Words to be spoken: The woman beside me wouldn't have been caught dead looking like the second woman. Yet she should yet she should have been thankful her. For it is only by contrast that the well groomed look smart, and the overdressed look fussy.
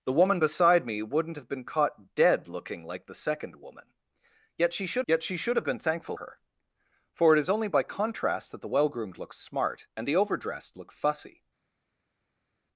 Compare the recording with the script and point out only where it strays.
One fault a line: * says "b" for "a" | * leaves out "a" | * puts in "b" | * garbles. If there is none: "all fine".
all fine